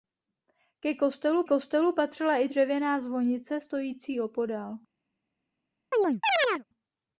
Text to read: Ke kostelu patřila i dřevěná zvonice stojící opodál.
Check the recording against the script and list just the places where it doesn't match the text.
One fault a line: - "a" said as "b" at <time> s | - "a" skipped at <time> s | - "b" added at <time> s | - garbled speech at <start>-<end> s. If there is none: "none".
- "kostelu" added at 1.4 s